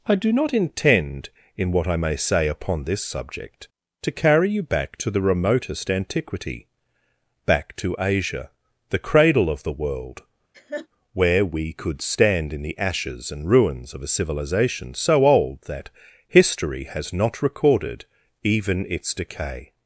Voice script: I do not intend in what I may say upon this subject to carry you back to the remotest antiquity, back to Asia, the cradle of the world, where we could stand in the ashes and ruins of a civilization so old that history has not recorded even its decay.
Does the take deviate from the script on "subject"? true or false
false